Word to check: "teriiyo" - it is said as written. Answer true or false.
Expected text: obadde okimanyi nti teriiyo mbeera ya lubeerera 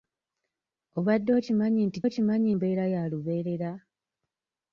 false